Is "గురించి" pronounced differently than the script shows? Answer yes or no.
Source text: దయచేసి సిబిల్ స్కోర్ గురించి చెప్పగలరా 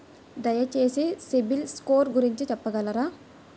no